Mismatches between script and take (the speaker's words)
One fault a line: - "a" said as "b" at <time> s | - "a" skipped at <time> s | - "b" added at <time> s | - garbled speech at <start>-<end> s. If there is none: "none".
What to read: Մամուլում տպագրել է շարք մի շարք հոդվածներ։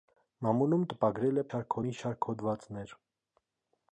none